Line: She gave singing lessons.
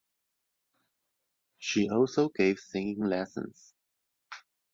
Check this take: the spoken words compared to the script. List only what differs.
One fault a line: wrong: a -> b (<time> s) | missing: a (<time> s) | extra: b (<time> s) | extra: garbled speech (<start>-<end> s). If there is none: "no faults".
extra: also (1.9 s)